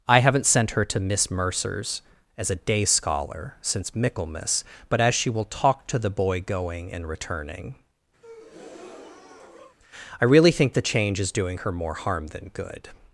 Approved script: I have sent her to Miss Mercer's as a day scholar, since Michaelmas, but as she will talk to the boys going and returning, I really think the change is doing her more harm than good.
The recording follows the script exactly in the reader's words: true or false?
false